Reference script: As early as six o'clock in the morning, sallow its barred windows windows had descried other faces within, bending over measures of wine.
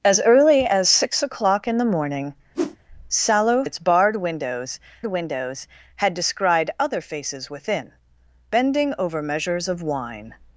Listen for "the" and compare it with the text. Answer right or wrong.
right